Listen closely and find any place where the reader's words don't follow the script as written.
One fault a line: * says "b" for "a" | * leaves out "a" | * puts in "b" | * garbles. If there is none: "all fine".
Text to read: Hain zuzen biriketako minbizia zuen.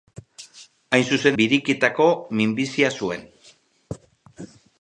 all fine